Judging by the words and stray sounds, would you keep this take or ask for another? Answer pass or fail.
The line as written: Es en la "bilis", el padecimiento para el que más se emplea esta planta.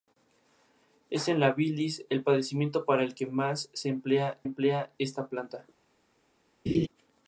fail